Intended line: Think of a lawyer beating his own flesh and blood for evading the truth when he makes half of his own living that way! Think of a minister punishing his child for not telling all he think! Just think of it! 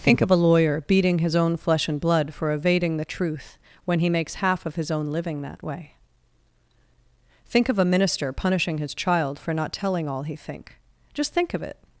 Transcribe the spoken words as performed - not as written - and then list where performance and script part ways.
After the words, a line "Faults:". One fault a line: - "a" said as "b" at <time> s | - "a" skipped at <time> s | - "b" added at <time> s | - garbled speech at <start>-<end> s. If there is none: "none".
Think of a lawyer beating his own flesh and blood for evading the truth when he makes half of his own living that way! Think of a minister punishing his child for not telling all he think! Just think of it!
Faults:
none